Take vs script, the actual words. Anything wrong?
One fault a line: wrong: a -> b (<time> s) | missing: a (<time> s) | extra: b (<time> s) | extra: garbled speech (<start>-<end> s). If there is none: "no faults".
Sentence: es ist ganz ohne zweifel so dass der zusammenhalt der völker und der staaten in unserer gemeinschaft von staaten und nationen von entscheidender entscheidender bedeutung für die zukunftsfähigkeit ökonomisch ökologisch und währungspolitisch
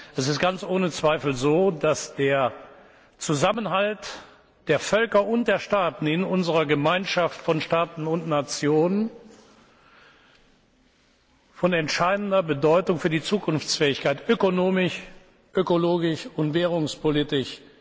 missing: entscheidender (12.4 s)